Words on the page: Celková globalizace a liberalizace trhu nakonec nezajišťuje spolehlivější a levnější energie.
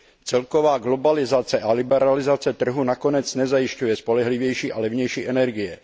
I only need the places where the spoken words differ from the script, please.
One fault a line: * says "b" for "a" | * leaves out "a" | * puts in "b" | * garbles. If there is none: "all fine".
all fine